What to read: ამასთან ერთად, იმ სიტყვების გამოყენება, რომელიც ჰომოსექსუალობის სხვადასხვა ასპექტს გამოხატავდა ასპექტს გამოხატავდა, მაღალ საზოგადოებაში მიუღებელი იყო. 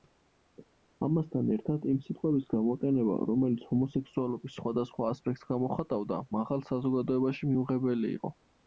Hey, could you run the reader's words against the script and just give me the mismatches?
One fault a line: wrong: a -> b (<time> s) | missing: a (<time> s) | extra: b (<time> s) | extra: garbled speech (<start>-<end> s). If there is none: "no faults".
missing: ასპექტს გამოხატავდა (6.2 s)